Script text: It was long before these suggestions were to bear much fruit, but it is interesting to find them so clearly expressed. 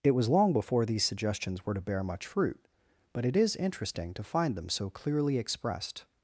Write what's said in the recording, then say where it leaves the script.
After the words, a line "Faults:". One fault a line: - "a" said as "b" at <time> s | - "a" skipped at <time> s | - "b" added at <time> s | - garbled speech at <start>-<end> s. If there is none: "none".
It was long before these suggestions were to bear much fruit, but it is interesting to find them so clearly expressed.
Faults:
none